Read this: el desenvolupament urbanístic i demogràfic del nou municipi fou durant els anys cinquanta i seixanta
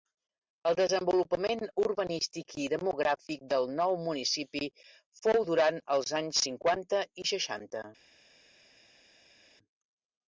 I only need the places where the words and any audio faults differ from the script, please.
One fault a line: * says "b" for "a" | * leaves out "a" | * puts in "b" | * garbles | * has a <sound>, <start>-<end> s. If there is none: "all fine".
all fine